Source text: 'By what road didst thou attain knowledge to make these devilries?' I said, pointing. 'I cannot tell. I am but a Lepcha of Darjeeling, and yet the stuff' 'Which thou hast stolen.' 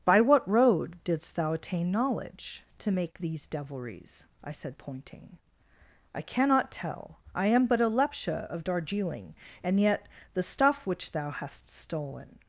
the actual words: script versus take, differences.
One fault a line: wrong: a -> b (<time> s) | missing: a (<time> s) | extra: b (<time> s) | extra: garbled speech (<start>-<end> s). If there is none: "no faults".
no faults